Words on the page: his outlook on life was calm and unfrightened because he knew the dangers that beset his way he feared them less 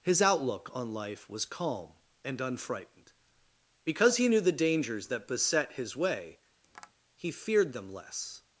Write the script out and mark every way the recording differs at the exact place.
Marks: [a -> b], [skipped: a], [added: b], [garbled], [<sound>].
his outlook on life was calm and unfrightened because he knew the dangers that beset his way [tap] he feared them less